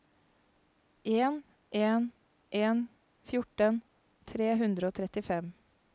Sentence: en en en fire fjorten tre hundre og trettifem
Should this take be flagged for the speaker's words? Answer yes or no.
yes